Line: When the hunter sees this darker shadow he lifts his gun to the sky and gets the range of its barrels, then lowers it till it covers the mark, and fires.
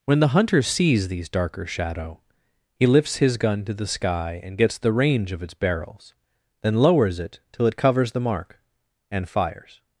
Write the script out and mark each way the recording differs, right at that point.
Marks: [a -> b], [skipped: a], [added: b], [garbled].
When the hunter sees [this -> these] darker shadow he lifts his gun to the sky and gets the range of its barrels, then lowers it till it covers the mark, and fires.